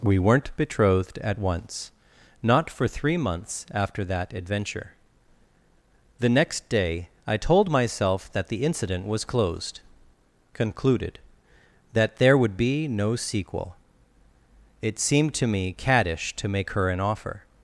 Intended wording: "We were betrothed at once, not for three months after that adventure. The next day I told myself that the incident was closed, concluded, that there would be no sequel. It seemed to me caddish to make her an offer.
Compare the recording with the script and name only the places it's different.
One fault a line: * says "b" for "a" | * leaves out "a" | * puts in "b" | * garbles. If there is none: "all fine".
* says "weren't" for "were"